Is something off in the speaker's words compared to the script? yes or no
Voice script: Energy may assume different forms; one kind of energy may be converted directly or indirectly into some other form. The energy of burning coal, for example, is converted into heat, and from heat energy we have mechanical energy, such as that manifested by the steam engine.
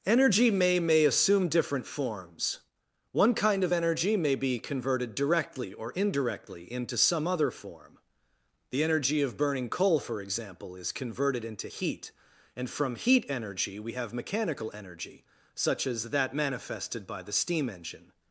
yes